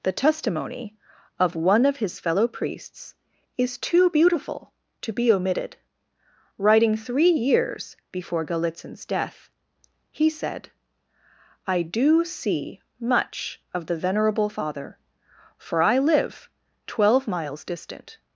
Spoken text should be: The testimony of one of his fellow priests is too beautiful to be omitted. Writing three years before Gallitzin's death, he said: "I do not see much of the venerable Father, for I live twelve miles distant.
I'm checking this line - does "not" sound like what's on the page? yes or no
no